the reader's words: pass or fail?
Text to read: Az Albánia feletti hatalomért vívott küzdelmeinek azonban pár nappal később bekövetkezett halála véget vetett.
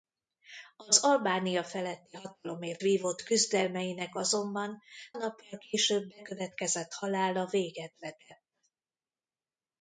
fail